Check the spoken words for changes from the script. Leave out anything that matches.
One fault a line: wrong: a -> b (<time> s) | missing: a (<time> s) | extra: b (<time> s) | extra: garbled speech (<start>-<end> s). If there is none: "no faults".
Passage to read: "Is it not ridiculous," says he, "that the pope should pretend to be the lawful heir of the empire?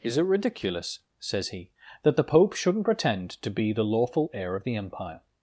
missing: not (0.2 s)
wrong: should -> shouldn't (2.5 s)